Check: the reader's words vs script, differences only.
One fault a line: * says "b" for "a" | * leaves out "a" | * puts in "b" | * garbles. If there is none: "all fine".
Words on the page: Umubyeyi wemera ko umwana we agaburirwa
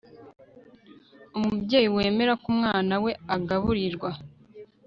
all fine